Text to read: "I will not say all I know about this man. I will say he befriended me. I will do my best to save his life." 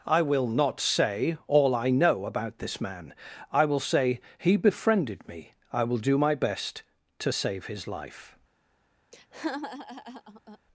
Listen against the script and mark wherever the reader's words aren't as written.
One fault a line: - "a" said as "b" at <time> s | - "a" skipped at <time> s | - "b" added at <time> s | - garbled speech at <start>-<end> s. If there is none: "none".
none